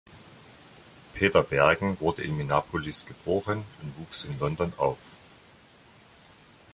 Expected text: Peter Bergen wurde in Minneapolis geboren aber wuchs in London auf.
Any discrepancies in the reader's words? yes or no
yes